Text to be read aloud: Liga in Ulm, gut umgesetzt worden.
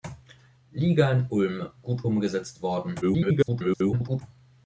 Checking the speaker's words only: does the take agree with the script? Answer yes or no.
no